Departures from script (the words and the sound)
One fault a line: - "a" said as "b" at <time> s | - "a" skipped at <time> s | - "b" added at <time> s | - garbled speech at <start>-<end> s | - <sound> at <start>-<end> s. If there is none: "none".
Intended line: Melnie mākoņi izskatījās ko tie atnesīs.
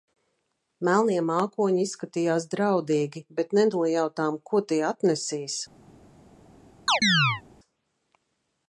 - "draudīgi bet nenojautām" added at 2.5 s
- chirp at 6.9-7.4 s